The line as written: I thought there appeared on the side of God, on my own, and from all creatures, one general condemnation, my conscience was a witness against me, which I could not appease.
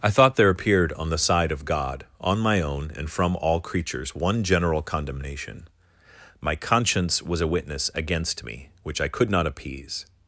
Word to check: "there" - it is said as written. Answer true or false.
true